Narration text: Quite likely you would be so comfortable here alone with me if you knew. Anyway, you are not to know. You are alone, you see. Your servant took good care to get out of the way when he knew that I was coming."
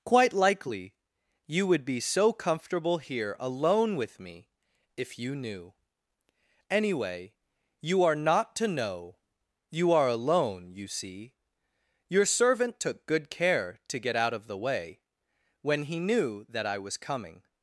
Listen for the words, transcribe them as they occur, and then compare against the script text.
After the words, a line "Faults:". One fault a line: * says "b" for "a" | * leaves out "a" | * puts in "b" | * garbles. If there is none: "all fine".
Quite likely you would be so comfortable here alone with me if you knew. Anyway, you are not to know. You are alone, you see. Your servant took good care to get out of the way when he knew that I was coming."
Faults:
all fine